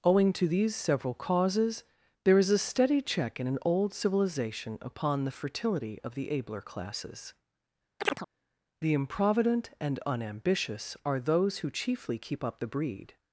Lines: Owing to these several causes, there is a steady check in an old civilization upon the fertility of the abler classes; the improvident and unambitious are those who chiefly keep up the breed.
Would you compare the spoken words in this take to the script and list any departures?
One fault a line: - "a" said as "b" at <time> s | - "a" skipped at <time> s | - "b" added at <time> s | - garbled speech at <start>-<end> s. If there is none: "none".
none